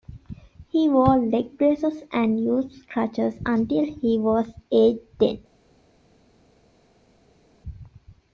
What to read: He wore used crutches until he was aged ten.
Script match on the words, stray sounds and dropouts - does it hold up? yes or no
no